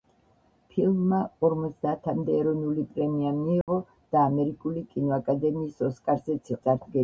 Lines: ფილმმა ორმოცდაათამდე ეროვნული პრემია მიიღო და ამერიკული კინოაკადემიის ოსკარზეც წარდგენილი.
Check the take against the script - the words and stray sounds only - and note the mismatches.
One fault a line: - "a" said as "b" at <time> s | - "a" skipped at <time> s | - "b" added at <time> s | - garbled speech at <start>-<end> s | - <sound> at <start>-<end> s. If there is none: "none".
- dropout at 3.6-3.7 s